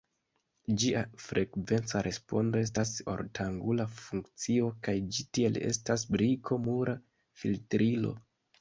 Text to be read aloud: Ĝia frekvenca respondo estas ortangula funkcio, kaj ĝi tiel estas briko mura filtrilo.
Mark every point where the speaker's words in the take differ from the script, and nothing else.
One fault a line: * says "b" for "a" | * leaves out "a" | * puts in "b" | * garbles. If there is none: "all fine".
all fine